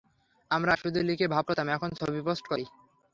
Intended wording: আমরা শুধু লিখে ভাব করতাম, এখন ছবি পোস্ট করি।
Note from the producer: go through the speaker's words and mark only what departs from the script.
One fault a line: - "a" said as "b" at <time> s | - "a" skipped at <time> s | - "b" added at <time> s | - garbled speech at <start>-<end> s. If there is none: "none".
none